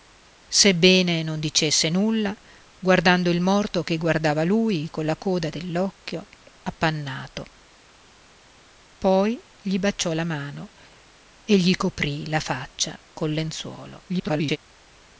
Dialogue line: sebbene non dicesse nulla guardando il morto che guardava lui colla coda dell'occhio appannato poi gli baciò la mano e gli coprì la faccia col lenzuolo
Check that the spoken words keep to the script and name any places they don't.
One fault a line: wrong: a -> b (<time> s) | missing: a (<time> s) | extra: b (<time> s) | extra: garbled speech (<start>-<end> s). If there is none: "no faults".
extra: garbled speech (14.1-14.6 s)